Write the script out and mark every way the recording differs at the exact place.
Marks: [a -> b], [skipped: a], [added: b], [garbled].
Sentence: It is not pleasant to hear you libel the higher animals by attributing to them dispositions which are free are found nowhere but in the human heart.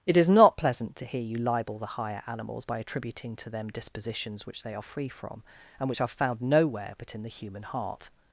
It is not pleasant to hear you libel the higher animals by attributing to them dispositions which [added: they] are free [added: from and which] are found nowhere but in the human heart.